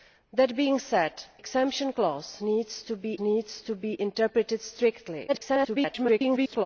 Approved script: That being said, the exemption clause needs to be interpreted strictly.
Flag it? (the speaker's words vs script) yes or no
yes